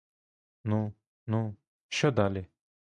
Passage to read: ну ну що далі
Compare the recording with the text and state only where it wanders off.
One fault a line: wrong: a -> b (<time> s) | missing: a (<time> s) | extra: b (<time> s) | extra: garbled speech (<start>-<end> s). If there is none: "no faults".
no faults